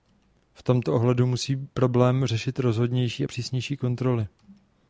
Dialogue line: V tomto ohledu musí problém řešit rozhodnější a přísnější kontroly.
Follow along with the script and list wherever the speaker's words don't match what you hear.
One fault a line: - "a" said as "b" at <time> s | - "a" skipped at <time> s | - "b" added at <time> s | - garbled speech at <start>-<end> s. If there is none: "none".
none